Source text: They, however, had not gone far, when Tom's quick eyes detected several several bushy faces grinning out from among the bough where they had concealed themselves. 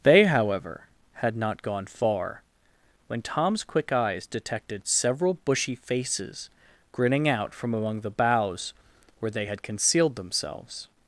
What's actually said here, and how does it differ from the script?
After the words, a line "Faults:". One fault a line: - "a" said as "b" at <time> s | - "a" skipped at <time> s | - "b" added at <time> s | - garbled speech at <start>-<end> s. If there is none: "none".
They, however, had not gone far, when Tom's quick eyes detected several bushy faces grinning out from among the boughs where they had concealed themselves.
Faults:
- "several" skipped at 5.4 s
- "bough" said as "boughs" at 8.1 s